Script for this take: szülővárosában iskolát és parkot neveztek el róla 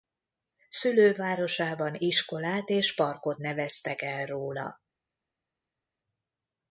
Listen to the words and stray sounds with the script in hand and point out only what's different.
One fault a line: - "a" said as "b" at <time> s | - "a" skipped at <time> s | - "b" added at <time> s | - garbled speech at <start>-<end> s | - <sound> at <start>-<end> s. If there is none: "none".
none